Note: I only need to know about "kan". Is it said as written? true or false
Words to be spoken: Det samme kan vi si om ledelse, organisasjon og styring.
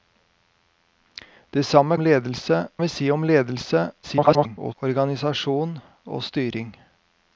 false